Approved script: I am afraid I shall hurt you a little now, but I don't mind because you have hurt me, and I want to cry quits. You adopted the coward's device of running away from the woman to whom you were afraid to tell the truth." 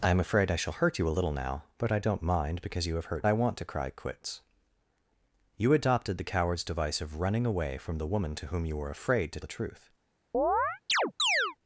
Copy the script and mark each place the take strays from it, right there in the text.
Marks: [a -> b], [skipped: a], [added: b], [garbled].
I am afraid I shall hurt you a little now, but I don't mind because you have hurt [skipped: me, and] I want to cry quits. You adopted the coward's device of running away from the woman to whom you were afraid to [skipped: tell] the truth."